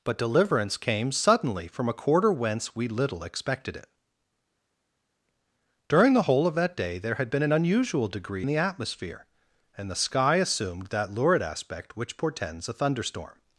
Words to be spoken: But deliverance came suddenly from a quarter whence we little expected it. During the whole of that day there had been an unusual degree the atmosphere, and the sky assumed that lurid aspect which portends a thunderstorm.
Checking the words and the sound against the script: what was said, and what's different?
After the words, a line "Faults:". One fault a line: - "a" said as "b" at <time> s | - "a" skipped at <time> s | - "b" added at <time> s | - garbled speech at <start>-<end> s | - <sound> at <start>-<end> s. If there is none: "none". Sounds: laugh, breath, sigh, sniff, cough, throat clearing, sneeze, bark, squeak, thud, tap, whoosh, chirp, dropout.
But deliverance came suddenly from a quarter whence we little expected it. During the whole of that day there had been an unusual degree the atmosphere, and the sky assumed that lurid aspect which portends a thunderstorm.
Faults:
none